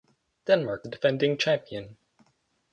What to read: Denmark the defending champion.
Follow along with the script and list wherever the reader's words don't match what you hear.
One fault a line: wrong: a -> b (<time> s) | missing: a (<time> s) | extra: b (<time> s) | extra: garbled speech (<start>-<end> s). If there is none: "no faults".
no faults